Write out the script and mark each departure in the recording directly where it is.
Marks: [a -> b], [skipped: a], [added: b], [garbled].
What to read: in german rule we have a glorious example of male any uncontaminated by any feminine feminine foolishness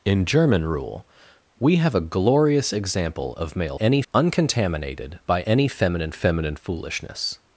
in german rule we have a glorious example of male any uncontaminated by any feminine feminine foolishness